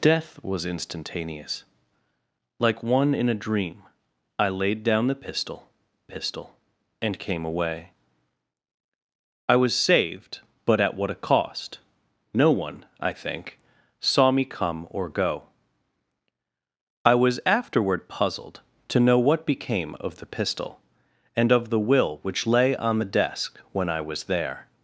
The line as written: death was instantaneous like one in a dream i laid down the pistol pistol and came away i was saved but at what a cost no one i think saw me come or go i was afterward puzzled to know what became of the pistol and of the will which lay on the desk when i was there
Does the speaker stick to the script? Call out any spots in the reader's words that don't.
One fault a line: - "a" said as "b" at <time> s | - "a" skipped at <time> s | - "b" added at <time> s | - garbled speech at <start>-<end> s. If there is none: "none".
none